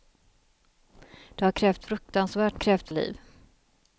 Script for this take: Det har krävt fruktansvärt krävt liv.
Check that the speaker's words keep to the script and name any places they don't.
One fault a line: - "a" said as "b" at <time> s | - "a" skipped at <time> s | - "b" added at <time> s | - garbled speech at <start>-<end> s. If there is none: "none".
none